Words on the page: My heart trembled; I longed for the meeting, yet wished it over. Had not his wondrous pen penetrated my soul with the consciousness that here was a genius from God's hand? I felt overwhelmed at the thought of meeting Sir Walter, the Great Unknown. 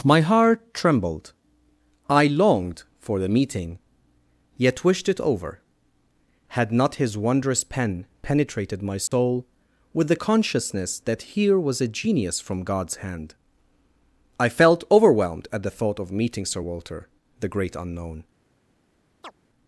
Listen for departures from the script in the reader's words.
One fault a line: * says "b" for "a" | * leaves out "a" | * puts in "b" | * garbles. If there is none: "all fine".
all fine